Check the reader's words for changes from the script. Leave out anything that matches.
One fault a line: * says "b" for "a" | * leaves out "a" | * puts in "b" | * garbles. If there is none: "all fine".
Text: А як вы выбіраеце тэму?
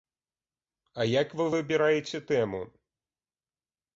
all fine